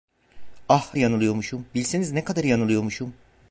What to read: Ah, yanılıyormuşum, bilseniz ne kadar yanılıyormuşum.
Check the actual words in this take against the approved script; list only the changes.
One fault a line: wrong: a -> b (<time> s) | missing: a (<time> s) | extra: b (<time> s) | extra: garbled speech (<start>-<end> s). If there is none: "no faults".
no faults